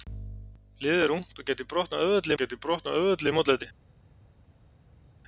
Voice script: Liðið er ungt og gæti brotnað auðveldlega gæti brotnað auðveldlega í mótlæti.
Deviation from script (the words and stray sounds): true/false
false